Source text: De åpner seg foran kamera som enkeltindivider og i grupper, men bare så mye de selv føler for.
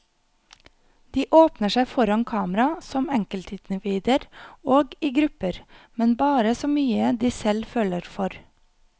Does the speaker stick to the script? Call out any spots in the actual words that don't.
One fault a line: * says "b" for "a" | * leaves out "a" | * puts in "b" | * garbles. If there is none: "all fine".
all fine